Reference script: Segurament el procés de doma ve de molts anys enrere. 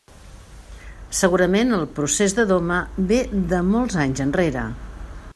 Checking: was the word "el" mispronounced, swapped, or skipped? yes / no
no